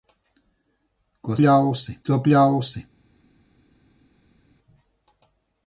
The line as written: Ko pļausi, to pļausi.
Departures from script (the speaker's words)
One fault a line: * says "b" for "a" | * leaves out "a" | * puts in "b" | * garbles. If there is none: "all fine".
all fine